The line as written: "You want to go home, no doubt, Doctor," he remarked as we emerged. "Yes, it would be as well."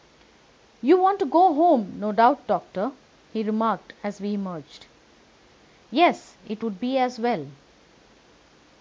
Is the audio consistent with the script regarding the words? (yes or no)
yes